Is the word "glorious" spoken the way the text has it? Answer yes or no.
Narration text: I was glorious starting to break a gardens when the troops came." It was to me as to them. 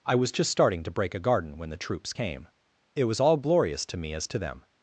no